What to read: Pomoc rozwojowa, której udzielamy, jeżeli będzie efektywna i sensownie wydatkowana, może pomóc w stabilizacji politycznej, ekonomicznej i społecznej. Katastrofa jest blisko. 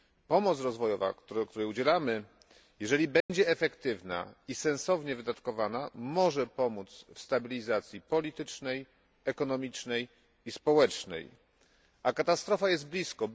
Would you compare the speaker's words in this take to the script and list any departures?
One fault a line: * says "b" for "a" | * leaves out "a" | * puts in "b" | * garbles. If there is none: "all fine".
* puts in "A"